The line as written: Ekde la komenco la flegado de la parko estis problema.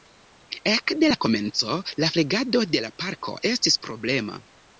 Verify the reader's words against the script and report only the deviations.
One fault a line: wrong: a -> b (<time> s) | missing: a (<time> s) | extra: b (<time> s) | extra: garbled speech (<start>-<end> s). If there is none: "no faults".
no faults